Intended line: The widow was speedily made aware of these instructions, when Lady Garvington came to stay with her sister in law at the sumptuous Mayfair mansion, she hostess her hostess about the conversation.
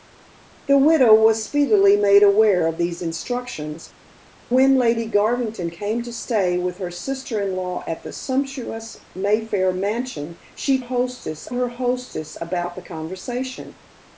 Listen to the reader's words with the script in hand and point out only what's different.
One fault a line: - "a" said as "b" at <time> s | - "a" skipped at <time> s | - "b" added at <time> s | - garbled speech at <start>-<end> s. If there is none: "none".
none